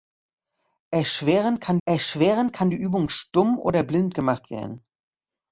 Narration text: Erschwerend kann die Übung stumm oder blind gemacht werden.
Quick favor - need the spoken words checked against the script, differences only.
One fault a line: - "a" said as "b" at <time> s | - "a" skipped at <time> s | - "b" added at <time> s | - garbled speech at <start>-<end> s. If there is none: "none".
- "erschwerend kann" added at 1.8 s